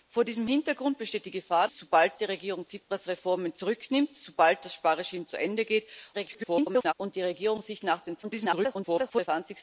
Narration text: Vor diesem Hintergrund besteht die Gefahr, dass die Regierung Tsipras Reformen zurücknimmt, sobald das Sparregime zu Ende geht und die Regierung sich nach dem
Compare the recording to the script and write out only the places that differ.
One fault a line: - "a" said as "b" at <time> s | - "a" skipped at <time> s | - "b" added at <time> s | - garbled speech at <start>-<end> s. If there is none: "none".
- "dass" said as "sobald" at 1.7 s
- garbled speech at 6.1-6.9 s
- garbled speech at 8.2-9.3 s